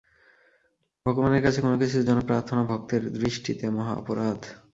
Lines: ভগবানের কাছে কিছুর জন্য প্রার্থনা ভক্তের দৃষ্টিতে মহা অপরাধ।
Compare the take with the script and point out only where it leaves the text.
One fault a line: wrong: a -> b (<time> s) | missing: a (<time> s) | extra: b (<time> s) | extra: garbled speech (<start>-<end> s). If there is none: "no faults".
extra: কোন (1.6 s)